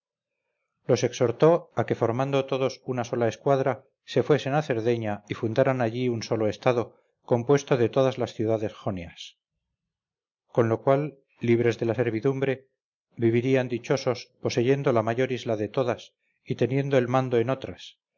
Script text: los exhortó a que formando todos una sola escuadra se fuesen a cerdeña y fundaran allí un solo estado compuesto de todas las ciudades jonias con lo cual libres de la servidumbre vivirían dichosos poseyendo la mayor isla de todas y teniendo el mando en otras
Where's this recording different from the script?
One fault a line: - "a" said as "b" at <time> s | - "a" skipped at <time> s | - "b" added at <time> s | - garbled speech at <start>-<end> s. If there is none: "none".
none